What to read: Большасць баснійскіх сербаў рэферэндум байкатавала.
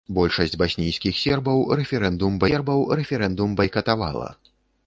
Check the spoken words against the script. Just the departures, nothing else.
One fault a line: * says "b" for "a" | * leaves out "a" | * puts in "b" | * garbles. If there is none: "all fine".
* puts in "сербаў рэферэндум"